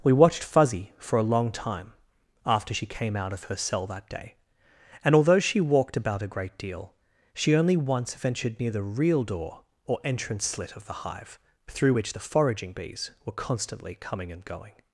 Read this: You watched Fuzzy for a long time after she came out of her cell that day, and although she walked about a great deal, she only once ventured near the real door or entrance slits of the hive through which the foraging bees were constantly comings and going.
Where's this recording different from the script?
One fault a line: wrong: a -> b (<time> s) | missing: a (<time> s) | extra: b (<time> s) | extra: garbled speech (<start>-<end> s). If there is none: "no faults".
wrong: You -> We (0.0 s)
wrong: slits -> slit (10.4 s)
wrong: comings -> coming (13.9 s)